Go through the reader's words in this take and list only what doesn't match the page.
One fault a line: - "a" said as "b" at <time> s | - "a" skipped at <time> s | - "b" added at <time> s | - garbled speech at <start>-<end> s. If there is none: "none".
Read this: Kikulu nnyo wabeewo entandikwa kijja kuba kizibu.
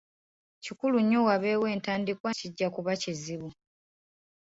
none